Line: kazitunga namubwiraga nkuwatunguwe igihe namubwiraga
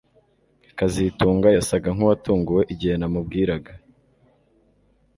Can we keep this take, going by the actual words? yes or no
no